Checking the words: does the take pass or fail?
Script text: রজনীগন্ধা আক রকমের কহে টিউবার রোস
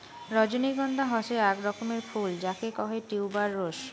fail